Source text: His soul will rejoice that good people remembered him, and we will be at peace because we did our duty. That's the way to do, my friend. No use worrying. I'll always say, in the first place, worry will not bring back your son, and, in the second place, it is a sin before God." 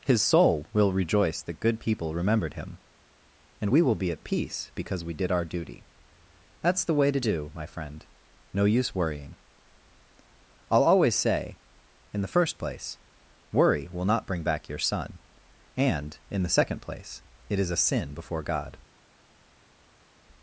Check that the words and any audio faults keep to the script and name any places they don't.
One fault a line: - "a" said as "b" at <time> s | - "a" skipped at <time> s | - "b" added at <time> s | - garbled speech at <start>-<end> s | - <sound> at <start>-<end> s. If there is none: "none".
none